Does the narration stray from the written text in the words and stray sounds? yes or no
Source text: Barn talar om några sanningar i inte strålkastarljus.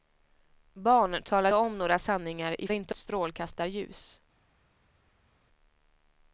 no